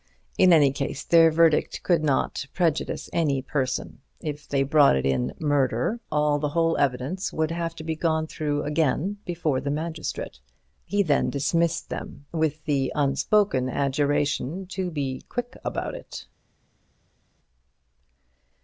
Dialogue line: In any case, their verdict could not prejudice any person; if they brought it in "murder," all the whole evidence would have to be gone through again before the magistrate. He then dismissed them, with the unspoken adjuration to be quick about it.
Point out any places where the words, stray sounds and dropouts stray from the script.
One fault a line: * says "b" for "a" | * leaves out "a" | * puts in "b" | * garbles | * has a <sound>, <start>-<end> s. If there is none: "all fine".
all fine